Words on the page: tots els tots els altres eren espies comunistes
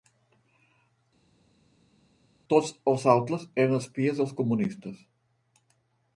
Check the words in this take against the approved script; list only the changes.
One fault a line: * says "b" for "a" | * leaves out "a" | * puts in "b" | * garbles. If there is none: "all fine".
* leaves out "tots els"
* puts in "dels"